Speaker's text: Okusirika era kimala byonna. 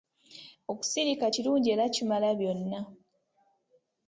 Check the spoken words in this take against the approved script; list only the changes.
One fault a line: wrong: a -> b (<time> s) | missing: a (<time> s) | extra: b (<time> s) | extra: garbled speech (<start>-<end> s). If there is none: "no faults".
extra: kirungi (1.3 s)